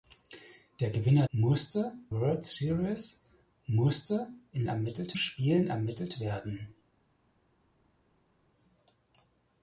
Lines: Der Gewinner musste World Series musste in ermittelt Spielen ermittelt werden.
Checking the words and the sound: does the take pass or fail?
pass